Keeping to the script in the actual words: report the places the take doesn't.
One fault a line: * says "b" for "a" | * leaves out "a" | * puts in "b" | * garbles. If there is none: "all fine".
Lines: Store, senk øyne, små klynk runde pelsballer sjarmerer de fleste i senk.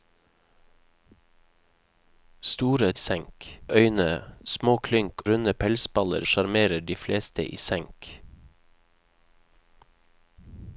all fine